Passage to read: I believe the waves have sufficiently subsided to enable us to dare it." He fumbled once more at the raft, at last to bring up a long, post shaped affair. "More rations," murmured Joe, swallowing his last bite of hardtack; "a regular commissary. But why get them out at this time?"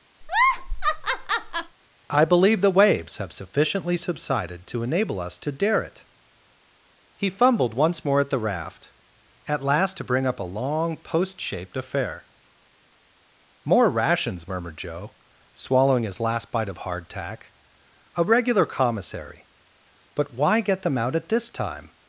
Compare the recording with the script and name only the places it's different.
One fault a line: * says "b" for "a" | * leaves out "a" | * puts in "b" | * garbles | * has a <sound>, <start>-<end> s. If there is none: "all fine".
* has a laugh, 0.2-1.8 s